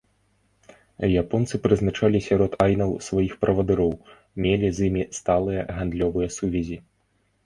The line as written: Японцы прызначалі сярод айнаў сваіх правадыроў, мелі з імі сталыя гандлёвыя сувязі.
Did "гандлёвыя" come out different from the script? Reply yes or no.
no